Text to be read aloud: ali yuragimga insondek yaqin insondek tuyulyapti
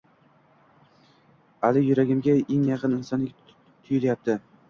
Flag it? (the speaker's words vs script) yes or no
yes